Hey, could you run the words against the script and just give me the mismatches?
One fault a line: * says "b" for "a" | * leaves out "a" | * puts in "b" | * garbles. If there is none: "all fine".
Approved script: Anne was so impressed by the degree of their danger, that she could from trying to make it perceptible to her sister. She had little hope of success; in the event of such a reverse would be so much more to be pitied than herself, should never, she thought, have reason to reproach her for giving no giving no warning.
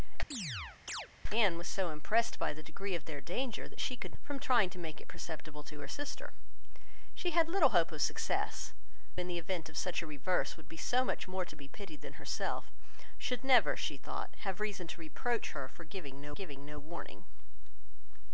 all fine